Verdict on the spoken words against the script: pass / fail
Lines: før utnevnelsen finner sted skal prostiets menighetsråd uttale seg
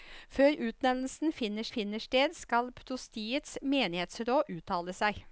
fail